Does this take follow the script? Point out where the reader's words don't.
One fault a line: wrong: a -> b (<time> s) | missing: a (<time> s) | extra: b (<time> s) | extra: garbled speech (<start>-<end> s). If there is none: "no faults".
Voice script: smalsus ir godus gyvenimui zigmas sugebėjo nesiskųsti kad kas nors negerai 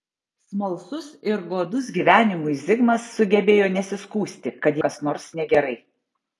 no faults